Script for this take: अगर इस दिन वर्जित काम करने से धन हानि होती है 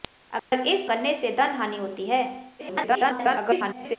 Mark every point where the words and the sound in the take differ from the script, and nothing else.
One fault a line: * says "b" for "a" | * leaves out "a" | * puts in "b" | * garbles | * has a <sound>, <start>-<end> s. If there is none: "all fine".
* has a dropout, 0.4-0.5 s
* leaves out "दिन वर्जित काम"
* garbles